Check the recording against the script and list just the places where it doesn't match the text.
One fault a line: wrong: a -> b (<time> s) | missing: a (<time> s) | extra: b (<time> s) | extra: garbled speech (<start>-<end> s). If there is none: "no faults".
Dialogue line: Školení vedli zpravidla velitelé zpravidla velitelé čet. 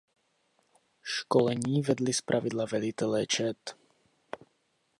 missing: zpravidla velitelé (3.3 s)